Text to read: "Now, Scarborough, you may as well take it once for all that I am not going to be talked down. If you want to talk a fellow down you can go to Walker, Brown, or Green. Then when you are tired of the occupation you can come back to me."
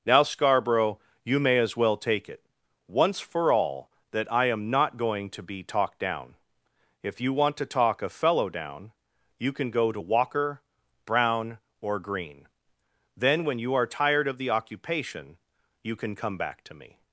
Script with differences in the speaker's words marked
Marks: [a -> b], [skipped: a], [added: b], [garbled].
"Now, Scarborough, you may as well take it once for all that I am not going to be talked down. If you want to talk a fellow down you can go to Walker, Brown, or Green. Then when you are tired of the occupation you can come back to me."